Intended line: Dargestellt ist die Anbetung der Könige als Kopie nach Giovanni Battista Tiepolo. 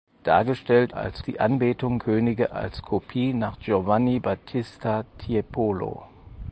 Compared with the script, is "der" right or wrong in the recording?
wrong